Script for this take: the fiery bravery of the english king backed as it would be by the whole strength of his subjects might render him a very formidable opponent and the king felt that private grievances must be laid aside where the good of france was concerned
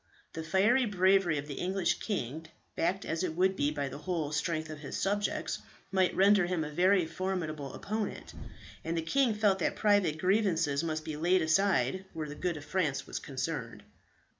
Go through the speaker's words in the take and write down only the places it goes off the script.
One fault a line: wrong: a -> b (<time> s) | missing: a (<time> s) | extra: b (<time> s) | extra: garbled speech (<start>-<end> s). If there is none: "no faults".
no faults